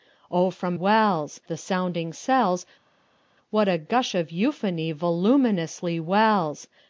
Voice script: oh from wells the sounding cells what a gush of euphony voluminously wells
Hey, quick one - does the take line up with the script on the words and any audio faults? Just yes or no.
yes